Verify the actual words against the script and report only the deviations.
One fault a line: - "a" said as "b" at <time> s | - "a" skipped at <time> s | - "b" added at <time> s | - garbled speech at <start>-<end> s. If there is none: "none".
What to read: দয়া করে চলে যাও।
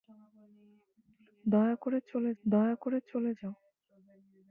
- "দয়া করে চলে" added at 2.4 s